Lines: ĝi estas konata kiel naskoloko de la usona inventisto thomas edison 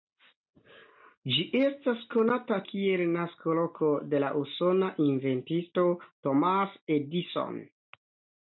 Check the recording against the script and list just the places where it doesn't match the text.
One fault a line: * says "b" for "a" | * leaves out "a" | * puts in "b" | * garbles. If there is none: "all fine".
all fine